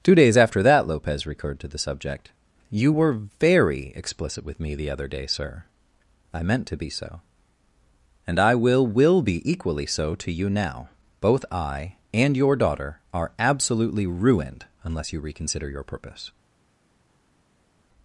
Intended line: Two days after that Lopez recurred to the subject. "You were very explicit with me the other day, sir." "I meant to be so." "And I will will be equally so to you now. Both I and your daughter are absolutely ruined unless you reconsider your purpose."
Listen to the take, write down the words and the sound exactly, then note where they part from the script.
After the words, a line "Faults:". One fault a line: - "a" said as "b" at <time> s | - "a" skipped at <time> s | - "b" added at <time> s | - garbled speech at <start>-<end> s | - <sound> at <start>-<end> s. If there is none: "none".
Two days after that Lopez recurred to the subject. "You were very explicit with me the other day, sir." "I meant to be so." "And I will will be equally so to you now. Both I and your daughter are absolutely ruined unless you reconsider your purpose."
Faults:
none